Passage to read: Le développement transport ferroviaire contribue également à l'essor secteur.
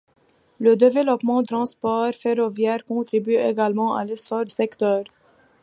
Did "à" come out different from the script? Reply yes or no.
no